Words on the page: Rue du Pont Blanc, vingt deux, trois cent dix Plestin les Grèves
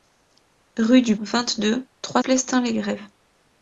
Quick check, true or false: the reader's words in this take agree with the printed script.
false